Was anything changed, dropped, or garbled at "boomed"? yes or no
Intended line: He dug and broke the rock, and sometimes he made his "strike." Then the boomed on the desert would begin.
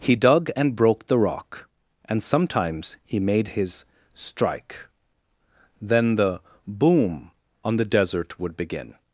yes